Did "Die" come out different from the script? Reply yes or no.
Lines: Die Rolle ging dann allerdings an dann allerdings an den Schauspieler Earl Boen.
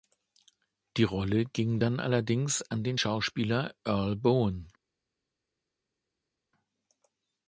no